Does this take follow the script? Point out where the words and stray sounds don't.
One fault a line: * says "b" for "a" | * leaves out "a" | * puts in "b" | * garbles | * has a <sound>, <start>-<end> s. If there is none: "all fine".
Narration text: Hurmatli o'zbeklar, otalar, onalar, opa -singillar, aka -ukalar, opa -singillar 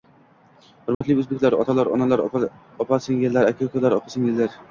* has a dropout, 0.9-1.0 s